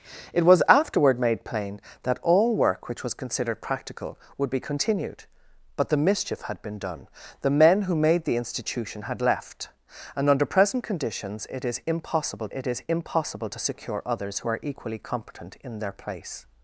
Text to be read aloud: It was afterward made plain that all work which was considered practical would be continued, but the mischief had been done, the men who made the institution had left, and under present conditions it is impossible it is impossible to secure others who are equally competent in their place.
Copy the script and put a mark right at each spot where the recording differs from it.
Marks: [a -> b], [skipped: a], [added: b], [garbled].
It was afterward made plain that all work which was considered practical would be continued, but the mischief had been done, the men who made the institution had left, and under present conditions it is impossible it is impossible to secure others who are equally competent in their place.